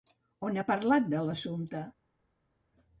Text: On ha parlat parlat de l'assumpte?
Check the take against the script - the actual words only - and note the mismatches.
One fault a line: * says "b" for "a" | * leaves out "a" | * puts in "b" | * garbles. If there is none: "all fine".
* leaves out "parlat"